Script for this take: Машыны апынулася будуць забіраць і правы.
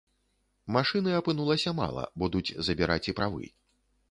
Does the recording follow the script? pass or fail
fail